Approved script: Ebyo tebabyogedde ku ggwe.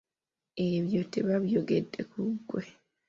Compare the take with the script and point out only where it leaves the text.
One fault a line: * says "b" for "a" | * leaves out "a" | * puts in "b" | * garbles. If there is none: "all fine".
all fine